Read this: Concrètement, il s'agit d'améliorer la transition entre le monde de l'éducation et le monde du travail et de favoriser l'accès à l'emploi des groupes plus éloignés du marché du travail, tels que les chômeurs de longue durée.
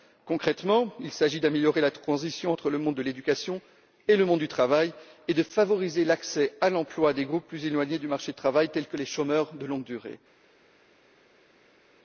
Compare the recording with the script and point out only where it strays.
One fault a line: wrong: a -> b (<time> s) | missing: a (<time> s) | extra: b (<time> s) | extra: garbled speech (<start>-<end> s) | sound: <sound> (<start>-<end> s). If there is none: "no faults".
no faults